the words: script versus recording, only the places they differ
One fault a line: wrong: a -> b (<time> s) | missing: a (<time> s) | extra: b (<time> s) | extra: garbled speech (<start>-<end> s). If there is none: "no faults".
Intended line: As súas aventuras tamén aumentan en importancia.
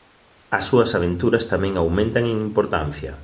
no faults